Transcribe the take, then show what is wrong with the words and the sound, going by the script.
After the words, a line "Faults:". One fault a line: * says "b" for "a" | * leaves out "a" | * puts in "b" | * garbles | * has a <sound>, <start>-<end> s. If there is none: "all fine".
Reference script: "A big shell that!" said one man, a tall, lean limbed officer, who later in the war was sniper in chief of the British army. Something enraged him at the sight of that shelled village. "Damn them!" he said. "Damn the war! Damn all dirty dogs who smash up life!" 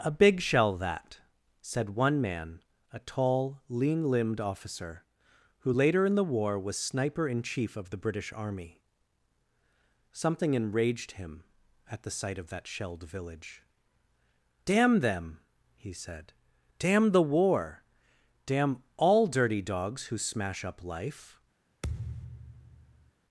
"A big shell that!" said one man, a tall, lean limbed officer, who later in the war was sniper in chief of the British army. Something enraged him at the sight of that shelled village. "Damn them!" he said. "Damn the war! Damn all dirty dogs who smash up life!"
Faults:
* has a thud, 21.8-23.1 s